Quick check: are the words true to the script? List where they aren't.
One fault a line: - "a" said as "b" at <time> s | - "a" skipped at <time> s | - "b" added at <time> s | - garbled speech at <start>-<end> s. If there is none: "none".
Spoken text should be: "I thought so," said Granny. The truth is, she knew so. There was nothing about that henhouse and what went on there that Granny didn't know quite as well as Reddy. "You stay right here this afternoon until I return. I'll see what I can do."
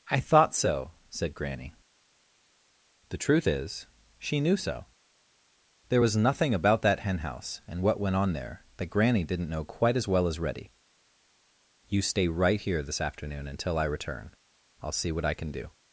none